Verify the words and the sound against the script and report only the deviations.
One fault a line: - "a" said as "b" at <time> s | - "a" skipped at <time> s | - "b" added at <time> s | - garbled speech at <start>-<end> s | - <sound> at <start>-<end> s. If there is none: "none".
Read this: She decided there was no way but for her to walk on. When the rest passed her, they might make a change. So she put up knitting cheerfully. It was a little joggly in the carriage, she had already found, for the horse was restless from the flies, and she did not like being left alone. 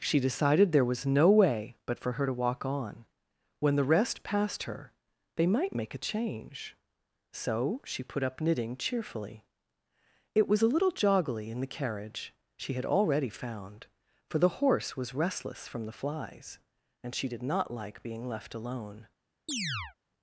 - chirp at 19.5-20.0 s